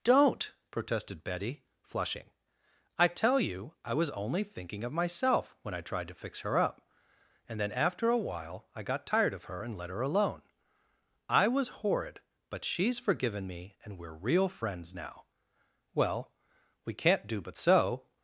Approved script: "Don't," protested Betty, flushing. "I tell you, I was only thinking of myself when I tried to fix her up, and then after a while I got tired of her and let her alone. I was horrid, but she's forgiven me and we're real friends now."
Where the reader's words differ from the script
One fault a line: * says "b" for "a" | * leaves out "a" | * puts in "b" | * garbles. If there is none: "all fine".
* puts in "Well we can't do but so"